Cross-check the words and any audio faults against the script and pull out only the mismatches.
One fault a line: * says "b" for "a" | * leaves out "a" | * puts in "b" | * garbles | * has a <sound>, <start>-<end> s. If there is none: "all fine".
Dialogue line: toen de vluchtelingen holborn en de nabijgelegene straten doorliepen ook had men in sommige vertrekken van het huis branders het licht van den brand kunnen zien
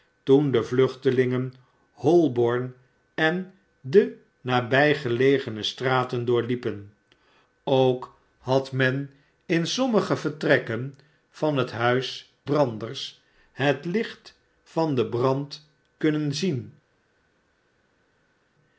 all fine